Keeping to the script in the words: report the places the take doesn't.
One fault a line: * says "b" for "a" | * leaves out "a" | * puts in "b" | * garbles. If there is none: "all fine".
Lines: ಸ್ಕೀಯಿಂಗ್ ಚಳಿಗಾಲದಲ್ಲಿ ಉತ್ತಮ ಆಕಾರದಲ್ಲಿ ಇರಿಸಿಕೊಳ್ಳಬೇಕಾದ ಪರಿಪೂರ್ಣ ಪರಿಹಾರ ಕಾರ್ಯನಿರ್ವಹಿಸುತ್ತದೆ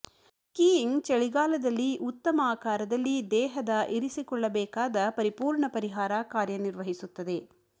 * puts in "ದೇಹದ"